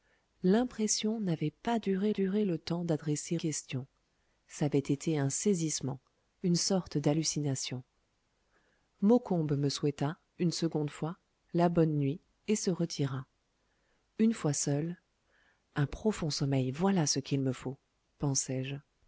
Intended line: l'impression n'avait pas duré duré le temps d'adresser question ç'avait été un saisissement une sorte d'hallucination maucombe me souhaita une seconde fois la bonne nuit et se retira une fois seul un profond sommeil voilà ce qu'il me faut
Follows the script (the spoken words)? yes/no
yes